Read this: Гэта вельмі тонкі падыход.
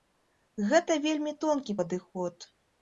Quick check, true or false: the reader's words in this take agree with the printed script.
true